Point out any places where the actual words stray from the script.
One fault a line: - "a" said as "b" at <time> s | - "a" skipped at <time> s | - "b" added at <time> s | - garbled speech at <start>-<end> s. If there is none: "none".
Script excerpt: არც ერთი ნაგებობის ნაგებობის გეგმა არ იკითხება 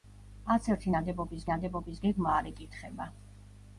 none